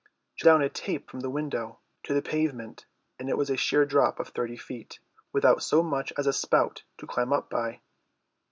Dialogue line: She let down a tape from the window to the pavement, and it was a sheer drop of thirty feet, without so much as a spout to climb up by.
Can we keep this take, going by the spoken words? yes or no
no